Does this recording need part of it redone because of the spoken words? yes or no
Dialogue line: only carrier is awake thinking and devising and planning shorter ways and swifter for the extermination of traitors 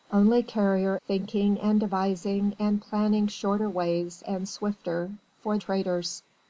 yes